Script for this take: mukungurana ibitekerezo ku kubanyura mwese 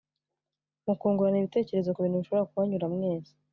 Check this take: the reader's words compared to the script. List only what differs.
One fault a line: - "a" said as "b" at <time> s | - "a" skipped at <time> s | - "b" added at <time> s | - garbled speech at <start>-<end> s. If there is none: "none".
- "bintu bishobora" added at 2.0 s